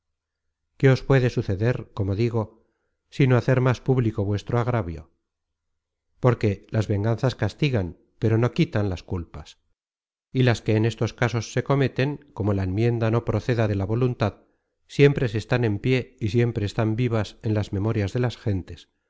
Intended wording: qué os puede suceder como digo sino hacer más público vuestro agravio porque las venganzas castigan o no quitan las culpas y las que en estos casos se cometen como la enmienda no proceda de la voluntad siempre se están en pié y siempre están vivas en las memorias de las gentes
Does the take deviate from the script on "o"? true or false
true